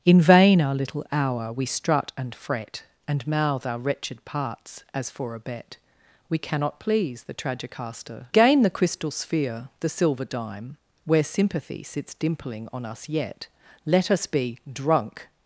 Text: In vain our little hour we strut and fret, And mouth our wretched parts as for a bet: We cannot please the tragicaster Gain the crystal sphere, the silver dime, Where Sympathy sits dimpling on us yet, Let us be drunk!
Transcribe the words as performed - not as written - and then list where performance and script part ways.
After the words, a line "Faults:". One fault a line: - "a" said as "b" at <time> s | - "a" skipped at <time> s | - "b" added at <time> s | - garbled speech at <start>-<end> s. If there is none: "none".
In vain our little hour we strut and fret, And mouth our wretched parts as for a bet: We cannot please the tragicaster Gain the crystal sphere, the silver dime, Where Sympathy sits dimpling on us yet, Let us be drunk!
Faults:
none